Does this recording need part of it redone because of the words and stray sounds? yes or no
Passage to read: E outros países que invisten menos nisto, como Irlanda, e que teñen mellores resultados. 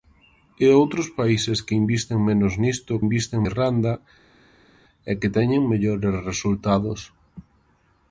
yes